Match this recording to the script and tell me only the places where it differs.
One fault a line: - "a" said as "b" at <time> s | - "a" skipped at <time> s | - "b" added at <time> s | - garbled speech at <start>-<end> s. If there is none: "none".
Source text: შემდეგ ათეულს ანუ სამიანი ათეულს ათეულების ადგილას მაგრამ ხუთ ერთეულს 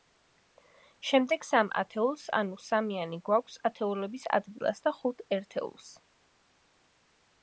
- "სამ" added at 1.5 s
- "ათეულს" said as "გვაქვს" at 3.3 s
- "მაგრამ" said as "და" at 4.9 s